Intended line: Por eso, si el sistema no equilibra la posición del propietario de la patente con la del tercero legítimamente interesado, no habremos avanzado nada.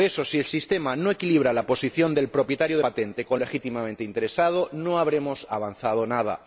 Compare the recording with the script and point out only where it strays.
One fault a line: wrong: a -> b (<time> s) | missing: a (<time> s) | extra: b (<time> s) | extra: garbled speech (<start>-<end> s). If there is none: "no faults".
missing: la (2.8 s)
missing: la del tercero (3.4 s)